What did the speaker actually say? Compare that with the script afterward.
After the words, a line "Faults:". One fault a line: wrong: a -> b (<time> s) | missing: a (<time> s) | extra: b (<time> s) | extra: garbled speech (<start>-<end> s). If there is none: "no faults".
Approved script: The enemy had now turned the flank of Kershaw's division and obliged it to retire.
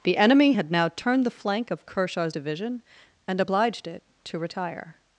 The enemy had now turned the flank of Kershaw's division and obliged it to retire.
Faults:
no faults